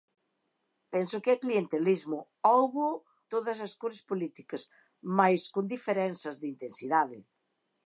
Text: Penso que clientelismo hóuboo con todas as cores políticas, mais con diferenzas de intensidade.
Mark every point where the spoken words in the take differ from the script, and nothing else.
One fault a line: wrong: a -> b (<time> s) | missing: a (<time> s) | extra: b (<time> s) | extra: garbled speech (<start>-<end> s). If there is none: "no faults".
missing: con (3.0 s)